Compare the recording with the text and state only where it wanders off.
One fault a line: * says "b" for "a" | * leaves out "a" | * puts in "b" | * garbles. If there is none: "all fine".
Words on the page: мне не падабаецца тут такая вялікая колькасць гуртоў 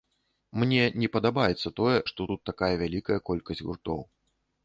* puts in "тое што"